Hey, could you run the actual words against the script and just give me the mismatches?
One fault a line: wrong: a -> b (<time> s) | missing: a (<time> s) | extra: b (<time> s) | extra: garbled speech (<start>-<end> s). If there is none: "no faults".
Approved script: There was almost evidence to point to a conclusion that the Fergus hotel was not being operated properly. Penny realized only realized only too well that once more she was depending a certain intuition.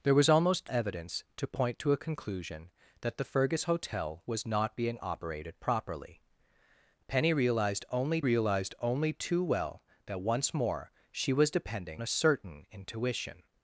no faults